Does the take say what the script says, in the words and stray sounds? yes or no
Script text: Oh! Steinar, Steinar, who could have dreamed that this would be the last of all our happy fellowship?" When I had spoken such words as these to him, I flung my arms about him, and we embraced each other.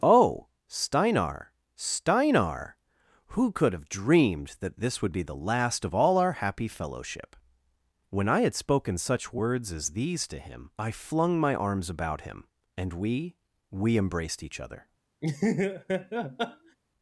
no